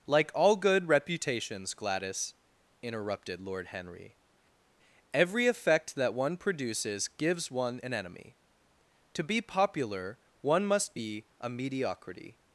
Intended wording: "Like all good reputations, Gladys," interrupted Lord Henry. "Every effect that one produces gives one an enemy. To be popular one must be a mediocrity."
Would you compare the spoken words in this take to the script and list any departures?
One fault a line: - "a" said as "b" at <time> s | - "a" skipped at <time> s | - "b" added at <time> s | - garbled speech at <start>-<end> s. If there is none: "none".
none